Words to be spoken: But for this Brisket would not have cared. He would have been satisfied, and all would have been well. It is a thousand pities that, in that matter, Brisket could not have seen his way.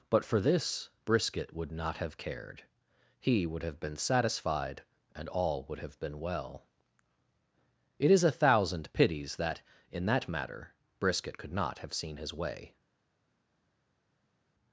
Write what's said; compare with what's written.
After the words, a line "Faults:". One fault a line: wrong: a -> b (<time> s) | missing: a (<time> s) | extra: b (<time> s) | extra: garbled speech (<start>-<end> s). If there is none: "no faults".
But for this Brisket would not have cared. He would have been satisfied, and all would have been well. It is a thousand pities that, in that matter, Brisket could not have seen his way.
Faults:
no faults